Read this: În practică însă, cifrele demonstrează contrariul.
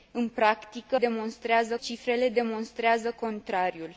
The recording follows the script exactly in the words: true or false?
false